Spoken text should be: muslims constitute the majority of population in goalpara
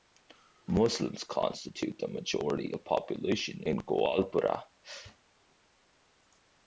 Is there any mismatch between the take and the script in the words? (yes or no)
no